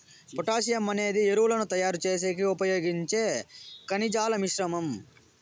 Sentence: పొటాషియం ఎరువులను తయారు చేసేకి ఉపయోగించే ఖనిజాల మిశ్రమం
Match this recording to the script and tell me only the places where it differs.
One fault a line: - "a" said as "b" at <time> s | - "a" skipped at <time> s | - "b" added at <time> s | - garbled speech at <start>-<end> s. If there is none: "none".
- "అనేది" added at 0.9 s